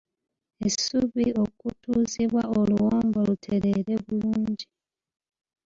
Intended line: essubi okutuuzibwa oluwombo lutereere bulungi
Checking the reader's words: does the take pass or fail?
pass